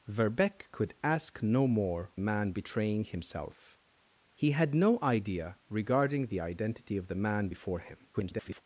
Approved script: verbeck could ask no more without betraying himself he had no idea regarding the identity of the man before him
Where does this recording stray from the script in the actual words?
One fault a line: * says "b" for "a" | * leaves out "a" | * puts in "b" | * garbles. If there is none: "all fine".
* says "man" for "without"
* garbles